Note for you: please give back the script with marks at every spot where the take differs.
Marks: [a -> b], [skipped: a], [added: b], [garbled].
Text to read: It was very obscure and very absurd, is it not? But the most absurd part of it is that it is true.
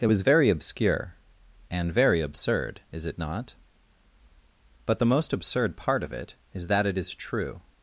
It was very obscure and very absurd, is it not? But the most absurd part of it is that it is true.